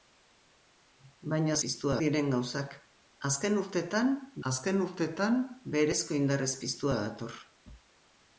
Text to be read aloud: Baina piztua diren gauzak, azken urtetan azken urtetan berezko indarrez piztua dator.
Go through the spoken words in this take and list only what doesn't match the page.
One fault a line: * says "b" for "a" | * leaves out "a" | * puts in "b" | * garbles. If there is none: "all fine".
all fine